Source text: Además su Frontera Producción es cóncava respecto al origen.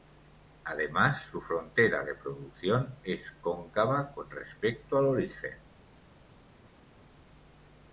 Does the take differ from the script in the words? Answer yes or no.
yes